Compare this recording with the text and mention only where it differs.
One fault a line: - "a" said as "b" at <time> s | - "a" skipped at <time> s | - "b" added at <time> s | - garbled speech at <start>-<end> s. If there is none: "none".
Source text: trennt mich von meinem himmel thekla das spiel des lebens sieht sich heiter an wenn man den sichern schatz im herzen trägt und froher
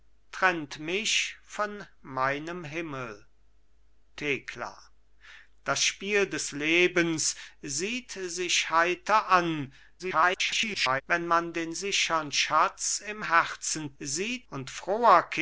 - garbled speech at 10.0-11.0 s
- "trägt" said as "sieht" at 14.0 s